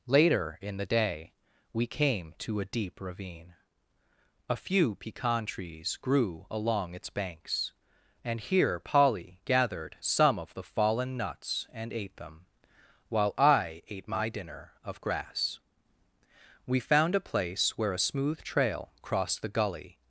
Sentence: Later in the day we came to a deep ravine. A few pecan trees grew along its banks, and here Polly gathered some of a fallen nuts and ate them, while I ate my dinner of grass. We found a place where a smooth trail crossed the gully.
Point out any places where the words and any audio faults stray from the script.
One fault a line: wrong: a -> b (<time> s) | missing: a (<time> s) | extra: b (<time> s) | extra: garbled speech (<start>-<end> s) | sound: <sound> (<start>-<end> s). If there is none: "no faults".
wrong: a -> the (10.5 s)